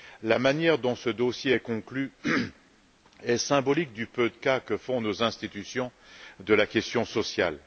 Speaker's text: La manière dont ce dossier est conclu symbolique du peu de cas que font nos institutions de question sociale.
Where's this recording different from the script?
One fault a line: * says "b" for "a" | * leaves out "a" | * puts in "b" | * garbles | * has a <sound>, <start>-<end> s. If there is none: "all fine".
* puts in "est"
* puts in "la"